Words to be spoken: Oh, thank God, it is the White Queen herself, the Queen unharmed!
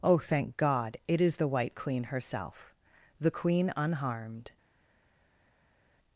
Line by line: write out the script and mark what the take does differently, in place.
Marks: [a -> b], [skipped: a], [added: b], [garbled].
Oh, thank God, it is the White Queen herself, the Queen unharmed!